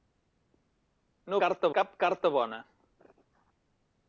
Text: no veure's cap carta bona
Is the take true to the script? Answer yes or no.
no